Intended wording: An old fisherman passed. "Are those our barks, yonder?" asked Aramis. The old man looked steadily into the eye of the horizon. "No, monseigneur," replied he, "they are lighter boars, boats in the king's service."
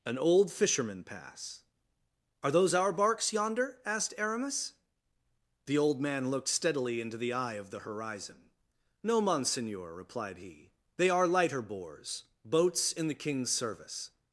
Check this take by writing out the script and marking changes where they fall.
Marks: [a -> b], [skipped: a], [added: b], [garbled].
An old fisherman [passed. -> pass] "Are those our barks, yonder?" asked Aramis. The old man looked steadily into the eye of the horizon. "No, monseigneur," replied he, "they are lighter boars, boats in the king's service."